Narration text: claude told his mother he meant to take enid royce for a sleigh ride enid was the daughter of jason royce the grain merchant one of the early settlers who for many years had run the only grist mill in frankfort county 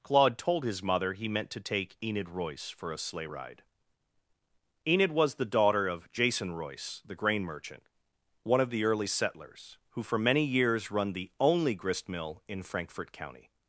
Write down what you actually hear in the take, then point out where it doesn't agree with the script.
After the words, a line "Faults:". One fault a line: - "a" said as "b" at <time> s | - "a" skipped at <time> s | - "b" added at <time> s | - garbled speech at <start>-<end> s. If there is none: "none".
claude told his mother he meant to take enid royce for a sleigh ride enid was the daughter of jason royce the grain merchant one of the early settlers who for many years run the only grist mill in frankfort county
Faults:
- "had" skipped at 10.9 s